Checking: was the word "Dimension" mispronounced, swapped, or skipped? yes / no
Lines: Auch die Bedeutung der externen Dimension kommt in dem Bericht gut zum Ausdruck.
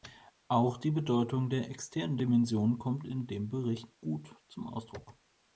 no